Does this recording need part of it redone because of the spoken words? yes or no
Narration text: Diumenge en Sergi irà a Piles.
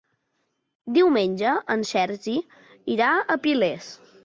no